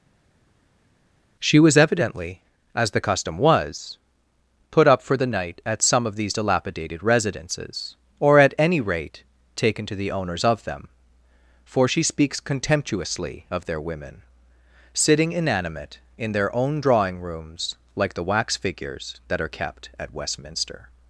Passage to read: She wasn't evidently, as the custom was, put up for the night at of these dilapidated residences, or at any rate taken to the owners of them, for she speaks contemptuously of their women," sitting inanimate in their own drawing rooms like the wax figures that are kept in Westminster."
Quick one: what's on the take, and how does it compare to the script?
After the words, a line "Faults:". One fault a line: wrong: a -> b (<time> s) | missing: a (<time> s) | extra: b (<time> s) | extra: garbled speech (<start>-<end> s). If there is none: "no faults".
She was evidently, as the custom was, put up for the night at some of these dilapidated residences, or at any rate taken to the owners of them, for she speaks contemptuously of their women," sitting inanimate in their own drawing rooms like the wax figures that are kept at Westminster."
Faults:
wrong: wasn't -> was (1.6 s)
extra: some (5.8 s)
wrong: in -> at (20.0 s)